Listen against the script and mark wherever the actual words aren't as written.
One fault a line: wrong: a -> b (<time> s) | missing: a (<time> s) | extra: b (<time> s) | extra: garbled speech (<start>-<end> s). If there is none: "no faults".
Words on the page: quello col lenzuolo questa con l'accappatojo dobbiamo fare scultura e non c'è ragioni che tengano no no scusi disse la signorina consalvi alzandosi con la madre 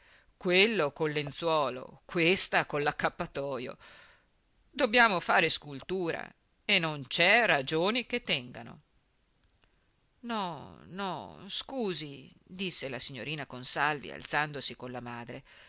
no faults